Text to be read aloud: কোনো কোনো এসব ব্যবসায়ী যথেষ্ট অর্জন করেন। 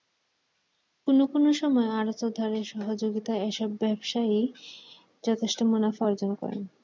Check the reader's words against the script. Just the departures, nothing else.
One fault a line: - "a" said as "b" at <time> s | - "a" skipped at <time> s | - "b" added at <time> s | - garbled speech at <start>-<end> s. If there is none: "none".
- "সময় আড়তদারের সহযোগিতায়" added at 1.5 s
- "মুনাফা" added at 5.6 s